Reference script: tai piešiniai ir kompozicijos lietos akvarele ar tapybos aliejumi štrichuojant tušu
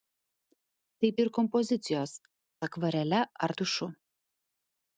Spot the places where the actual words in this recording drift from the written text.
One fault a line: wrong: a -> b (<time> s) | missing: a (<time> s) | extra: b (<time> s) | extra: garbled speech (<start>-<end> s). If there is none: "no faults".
missing: piešiniai (1.1 s)
missing: lietos (2.1 s)
missing: tapybos aliejumi štrichuojant (3.6 s)